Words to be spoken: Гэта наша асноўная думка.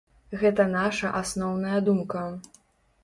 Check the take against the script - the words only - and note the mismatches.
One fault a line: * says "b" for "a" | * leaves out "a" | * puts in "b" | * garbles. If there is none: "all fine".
all fine